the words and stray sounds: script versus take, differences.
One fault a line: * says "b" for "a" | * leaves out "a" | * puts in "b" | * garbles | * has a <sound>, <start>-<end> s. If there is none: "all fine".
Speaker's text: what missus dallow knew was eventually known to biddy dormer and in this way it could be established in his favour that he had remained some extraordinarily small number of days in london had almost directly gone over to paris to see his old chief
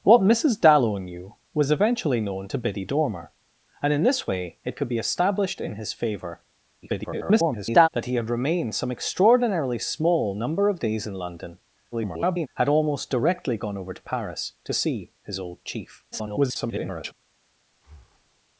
* garbles
* garbles
* garbles
* has a breath, 17.7-18.4 s